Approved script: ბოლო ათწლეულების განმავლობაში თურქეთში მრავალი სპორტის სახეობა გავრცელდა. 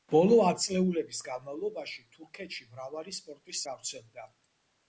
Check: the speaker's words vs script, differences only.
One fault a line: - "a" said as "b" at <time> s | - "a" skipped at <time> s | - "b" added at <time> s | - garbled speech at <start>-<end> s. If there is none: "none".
- "სახეობა" skipped at 3.6 s